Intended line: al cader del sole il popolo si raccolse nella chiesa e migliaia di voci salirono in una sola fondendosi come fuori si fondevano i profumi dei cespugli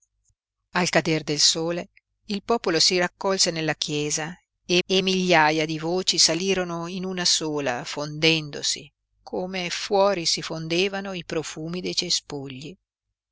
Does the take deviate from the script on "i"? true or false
false